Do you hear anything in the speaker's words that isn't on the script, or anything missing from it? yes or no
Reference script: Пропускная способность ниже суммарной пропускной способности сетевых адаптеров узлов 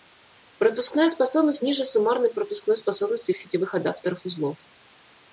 no